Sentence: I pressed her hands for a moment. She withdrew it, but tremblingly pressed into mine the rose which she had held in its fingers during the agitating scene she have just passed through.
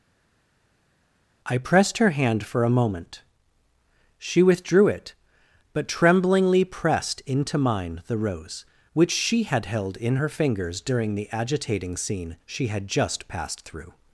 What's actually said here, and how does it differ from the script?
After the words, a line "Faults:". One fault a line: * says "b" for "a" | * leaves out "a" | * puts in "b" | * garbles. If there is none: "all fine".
I pressed her hand for a moment. She withdrew it, but tremblingly pressed into mine the rose which she had held in her fingers during the agitating scene she had just passed through.
Faults:
* says "hand" for "hands"
* says "her" for "its"
* says "had" for "have"